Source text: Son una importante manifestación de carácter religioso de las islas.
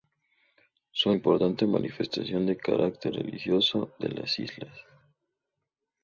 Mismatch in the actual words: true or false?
true